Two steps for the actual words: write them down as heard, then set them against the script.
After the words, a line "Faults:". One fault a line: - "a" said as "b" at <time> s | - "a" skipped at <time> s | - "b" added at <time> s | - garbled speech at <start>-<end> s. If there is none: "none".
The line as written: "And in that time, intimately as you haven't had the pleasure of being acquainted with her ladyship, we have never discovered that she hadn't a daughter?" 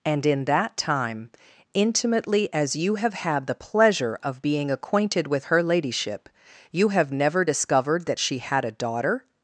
"And in that time, intimately as you have had the pleasure of being acquainted with her ladyship, you have never discovered that she had a daughter?"
Faults:
- "haven't" said as "have" at 3.0 s
- "we" said as "you" at 6.7 s
- "hadn't" said as "had" at 8.4 s